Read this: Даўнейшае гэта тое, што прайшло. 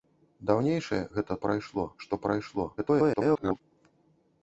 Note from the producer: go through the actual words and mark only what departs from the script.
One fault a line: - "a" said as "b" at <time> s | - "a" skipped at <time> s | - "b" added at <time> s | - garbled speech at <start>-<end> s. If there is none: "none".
- "тое" said as "прайшло" at 1.5 s
- garbled speech at 2.8-3.6 s